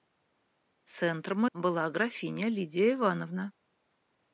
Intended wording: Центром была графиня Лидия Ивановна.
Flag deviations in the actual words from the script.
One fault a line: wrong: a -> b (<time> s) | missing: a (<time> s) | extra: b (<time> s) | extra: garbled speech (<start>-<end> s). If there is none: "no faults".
no faults